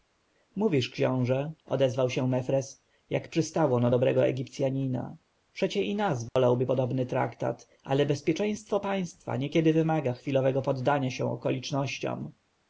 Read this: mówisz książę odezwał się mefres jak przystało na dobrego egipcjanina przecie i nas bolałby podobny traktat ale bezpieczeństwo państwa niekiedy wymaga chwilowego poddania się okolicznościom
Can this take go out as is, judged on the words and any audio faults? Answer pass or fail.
fail